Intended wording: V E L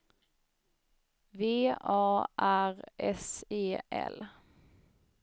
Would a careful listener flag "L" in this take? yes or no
no